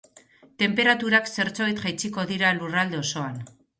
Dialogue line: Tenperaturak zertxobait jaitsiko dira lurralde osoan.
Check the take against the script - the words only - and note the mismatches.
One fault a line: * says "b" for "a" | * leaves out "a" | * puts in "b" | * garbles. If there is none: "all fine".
all fine